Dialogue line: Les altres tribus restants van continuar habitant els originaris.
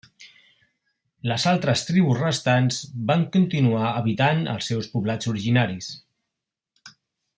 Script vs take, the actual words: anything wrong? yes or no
yes